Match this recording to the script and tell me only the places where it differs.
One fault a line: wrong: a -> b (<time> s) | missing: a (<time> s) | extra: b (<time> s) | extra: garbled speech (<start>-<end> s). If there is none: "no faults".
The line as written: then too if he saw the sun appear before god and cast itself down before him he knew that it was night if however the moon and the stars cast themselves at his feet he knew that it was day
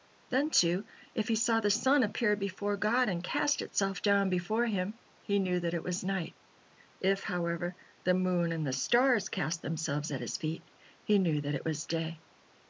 no faults